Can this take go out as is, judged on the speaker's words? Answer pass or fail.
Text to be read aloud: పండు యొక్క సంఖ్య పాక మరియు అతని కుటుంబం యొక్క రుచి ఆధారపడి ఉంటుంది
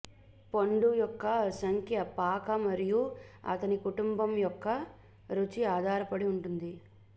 pass